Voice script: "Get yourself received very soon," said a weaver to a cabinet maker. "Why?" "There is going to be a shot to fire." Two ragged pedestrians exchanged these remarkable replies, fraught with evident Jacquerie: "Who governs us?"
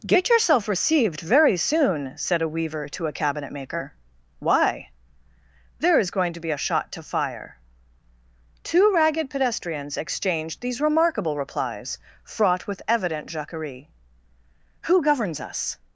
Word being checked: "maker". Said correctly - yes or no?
yes